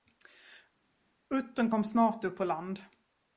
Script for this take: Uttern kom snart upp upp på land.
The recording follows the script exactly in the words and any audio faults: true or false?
false